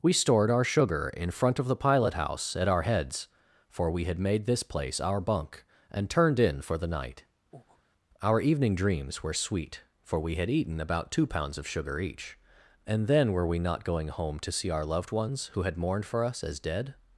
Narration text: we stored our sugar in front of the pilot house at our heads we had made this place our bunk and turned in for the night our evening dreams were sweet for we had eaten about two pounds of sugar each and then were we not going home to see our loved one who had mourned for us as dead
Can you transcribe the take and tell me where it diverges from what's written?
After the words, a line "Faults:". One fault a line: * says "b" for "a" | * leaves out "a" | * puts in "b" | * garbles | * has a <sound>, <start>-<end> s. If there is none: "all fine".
we stored our sugar in front of the pilot house at our heads for we had made this place our bunk and turned in for the night our evening dreams were sweet for we had eaten about two pounds of sugar each and then were we not going home to see our loved ones who had mourned for us as dead
Faults:
* puts in "for"
* has a breath, 7.5-7.8 s
* says "ones" for "one"